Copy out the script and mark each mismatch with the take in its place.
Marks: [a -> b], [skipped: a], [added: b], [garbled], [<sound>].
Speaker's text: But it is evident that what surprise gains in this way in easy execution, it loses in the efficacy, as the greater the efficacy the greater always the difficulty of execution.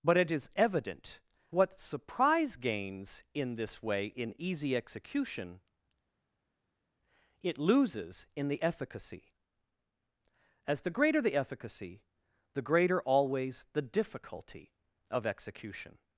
But it is evident [skipped: that] what surprise gains in this way in easy execution, it loses in the efficacy, as the greater the efficacy the greater always the difficulty of execution.